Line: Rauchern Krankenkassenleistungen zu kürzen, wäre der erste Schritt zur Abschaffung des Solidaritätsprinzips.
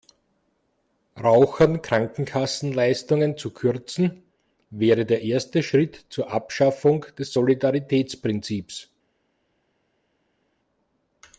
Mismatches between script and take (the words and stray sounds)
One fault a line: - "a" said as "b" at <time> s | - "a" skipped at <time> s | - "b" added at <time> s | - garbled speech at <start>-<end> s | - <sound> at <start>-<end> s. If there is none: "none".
none